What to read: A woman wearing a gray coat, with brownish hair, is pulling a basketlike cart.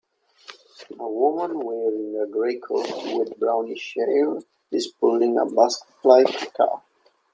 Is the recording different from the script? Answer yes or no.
no